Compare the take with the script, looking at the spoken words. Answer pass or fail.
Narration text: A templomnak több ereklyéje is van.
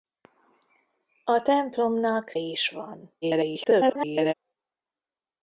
fail